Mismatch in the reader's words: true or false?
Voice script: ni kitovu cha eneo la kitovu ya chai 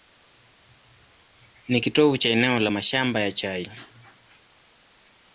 true